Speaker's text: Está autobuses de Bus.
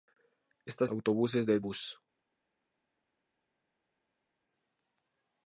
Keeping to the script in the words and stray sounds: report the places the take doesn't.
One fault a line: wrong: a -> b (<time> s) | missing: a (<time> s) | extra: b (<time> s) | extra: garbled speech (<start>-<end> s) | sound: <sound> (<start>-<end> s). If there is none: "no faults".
no faults